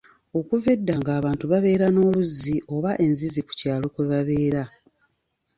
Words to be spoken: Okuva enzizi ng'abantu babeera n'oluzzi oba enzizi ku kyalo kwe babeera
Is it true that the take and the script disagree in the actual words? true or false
true